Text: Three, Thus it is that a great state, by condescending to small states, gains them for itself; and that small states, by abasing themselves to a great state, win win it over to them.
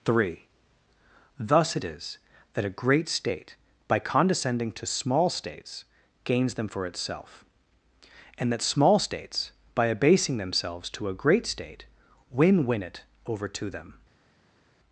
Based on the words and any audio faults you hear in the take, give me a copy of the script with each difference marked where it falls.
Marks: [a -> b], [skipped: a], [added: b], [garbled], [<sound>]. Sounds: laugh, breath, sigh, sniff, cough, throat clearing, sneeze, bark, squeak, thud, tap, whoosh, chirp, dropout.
Three, Thus it is that a great state, by condescending to small states, gains them for itself; and that small states, by abasing themselves to a great state, win win it over to them.